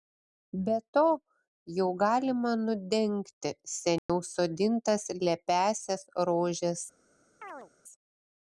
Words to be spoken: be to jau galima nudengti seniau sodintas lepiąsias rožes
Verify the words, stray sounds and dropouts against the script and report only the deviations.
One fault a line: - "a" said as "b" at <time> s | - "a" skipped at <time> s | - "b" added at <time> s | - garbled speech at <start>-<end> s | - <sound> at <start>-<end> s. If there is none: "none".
- dropout at 4.0-4.1 s
- chirp at 7.4-7.7 s